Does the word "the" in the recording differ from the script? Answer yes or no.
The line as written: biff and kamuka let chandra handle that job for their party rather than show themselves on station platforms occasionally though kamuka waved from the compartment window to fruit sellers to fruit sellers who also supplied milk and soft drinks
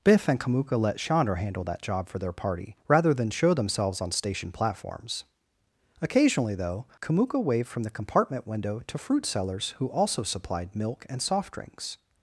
no